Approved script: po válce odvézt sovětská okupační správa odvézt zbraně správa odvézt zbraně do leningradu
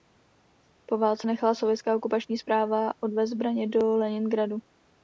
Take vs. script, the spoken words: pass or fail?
fail